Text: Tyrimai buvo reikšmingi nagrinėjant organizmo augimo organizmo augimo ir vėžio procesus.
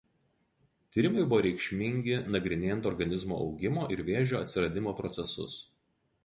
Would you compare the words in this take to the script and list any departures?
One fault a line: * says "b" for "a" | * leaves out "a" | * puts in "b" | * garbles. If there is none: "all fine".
* leaves out "organizmo augimo"
* puts in "atsiradimo"